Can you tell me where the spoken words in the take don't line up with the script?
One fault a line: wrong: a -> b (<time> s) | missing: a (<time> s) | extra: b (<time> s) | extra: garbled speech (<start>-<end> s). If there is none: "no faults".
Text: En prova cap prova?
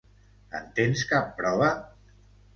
wrong: prova -> tens (0.8 s)